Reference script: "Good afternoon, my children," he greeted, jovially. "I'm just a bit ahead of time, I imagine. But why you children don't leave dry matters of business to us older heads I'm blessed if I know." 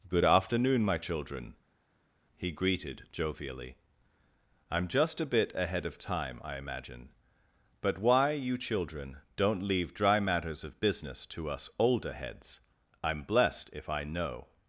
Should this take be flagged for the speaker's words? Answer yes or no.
no